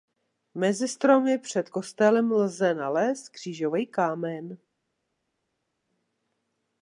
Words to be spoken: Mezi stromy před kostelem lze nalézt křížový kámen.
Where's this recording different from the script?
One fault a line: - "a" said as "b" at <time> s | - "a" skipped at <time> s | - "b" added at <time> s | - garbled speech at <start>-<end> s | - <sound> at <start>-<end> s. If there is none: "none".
none